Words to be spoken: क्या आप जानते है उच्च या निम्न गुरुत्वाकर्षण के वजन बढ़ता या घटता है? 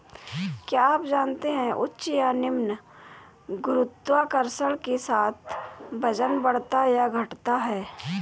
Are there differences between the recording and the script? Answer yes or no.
yes